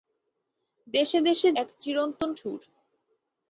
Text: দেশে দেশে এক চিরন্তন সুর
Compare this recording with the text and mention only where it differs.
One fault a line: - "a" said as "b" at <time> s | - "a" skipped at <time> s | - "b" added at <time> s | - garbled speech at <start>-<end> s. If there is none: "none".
none